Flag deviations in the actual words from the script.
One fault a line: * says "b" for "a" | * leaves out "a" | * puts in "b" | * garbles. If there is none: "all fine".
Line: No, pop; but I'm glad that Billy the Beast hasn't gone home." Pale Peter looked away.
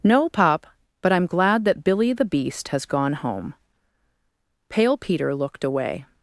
* says "has" for "hasn't"